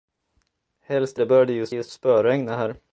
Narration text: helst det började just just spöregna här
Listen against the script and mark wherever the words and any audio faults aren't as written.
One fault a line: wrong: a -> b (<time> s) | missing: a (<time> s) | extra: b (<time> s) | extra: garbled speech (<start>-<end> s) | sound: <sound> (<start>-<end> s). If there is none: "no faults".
no faults